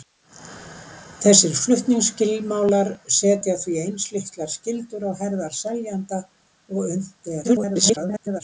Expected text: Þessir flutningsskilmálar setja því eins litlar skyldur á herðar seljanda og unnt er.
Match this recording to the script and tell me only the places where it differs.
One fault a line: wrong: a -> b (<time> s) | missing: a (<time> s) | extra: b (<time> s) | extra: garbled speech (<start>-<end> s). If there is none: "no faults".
extra: garbled speech (7.4-8.4 s)